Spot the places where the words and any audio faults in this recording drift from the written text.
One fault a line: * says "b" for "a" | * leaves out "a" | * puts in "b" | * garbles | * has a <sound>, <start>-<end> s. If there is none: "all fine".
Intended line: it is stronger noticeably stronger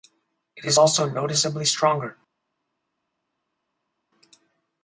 * says "also" for "stronger"